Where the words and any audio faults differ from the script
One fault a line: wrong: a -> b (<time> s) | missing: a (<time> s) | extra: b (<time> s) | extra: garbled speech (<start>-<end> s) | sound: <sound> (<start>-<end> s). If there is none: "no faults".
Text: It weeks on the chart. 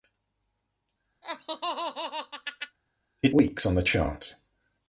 sound: laugh (1.2-2.8 s)